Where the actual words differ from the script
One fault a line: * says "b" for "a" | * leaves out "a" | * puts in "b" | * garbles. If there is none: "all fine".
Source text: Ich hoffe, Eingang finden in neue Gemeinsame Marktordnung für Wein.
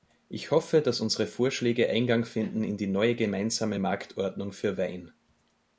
* puts in "dass unsere Vorschläge"
* puts in "die"